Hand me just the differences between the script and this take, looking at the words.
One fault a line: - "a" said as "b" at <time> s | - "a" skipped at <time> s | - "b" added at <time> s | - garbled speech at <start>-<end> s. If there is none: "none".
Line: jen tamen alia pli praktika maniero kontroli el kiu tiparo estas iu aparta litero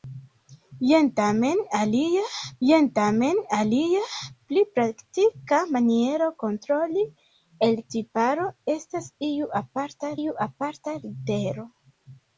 - "jen tamen alia" added at 2.7 s
- "kiu" skipped at 7.8 s
- "iu aparta" added at 10.2 s